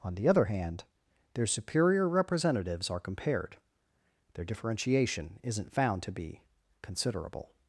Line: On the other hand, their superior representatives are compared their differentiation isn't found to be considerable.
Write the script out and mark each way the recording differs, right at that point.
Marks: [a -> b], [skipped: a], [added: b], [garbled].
On the other hand, their superior representatives are compared their differentiation isn't found to be considerable.